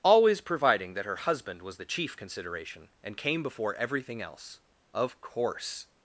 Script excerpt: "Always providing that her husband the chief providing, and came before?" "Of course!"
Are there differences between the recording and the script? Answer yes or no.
yes